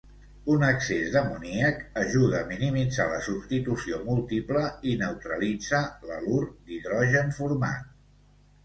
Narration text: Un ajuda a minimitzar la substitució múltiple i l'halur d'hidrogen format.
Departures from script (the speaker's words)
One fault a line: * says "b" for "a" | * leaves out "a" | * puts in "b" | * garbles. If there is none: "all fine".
* puts in "excés d'amoníac"
* puts in "neutralitza"